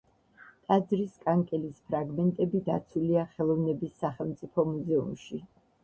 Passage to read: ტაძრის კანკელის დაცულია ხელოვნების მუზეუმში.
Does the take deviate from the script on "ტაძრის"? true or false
false